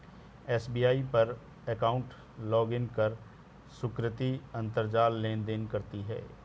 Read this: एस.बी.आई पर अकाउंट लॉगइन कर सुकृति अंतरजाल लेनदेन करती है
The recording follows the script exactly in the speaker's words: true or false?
true